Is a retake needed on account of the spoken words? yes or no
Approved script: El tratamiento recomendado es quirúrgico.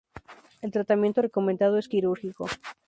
no